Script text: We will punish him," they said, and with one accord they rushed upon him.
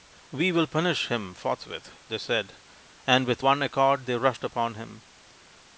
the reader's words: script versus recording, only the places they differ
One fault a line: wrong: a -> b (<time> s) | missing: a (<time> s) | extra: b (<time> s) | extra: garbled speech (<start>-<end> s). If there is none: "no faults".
extra: forthwith (1.4 s)